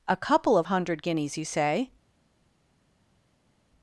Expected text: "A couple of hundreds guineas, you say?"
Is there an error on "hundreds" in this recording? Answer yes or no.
yes